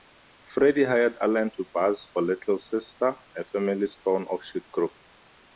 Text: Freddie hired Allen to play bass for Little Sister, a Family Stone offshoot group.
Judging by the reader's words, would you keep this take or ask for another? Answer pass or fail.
fail